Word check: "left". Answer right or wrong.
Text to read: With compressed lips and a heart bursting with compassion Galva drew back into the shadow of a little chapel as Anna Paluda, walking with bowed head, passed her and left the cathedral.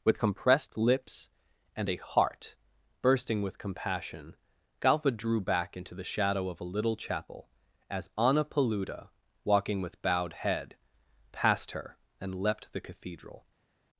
wrong